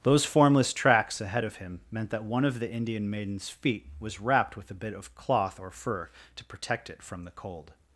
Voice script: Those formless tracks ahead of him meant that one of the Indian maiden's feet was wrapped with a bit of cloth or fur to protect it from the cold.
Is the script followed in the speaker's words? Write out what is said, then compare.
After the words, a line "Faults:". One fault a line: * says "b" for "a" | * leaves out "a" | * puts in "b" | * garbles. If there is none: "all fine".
Those formless tracks ahead of him meant that one of the Indian maiden's feet was wrapped with a bit of cloth or fur to protect it from the cold.
Faults:
all fine